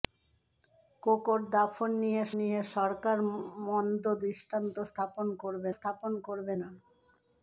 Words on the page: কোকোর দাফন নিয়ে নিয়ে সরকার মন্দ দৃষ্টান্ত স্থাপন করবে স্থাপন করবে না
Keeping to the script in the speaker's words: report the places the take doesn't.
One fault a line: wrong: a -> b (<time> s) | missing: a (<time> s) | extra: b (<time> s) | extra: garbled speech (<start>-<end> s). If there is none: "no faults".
no faults